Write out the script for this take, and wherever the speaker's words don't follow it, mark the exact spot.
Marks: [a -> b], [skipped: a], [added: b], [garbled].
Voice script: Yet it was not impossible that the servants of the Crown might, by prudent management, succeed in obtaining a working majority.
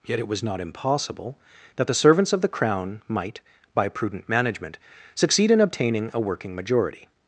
Yet it was not impossible that the servants of the Crown might, by prudent management, succeed in obtaining a working majority.